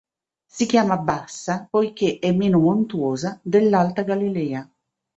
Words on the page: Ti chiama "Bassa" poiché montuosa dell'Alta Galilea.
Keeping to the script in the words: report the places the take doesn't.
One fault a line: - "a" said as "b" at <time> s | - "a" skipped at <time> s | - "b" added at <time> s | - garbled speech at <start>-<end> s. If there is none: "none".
- "Ti" said as "Si" at 0.5 s
- "è meno" added at 2.2 s